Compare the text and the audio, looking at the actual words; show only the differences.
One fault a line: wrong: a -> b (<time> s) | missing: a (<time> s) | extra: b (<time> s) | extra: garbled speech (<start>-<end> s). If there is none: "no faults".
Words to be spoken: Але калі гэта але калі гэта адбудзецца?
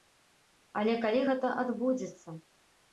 missing: але калі гэта (1.6 s)